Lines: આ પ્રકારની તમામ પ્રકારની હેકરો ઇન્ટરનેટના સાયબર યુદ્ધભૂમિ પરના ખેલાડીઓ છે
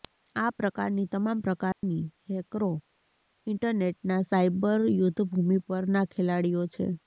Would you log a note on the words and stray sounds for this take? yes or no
yes